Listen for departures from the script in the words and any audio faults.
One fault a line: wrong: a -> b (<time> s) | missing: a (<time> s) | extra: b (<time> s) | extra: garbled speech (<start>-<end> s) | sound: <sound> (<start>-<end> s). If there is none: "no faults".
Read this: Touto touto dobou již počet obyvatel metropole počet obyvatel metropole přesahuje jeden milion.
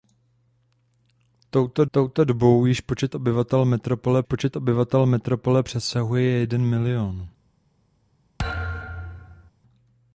sound: thud (8.4-9.5 s)